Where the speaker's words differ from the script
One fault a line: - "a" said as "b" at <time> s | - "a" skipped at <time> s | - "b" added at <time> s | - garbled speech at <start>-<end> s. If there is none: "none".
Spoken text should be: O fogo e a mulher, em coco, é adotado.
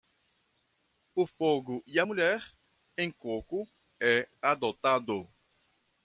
none